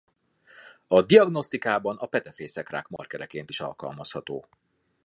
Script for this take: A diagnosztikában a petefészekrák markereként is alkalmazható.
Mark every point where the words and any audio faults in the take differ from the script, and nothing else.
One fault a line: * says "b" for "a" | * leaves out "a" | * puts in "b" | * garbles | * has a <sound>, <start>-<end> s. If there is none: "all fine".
* has a dropout, 3.0-3.0 s